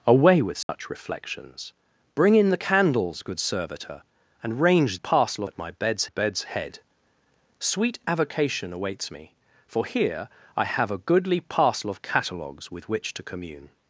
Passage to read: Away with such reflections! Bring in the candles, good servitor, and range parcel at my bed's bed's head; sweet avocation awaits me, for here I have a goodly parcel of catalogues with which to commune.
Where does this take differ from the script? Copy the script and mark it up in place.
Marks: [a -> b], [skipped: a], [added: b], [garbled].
Away with such reflections! Bring in the candles, good servitor, and range parcel at my bed's bed's head; sweet avocation awaits me, for here I have a goodly parcel of catalogues with which to commune.